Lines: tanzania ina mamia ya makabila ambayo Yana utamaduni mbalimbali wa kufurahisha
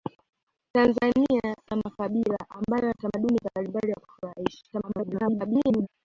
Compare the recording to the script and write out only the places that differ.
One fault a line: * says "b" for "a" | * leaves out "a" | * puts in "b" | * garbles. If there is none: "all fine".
* leaves out "ina mamia"
* leaves out "Yana"
* garbles